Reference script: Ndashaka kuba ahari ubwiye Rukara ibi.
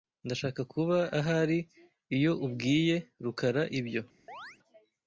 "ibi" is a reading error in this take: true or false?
true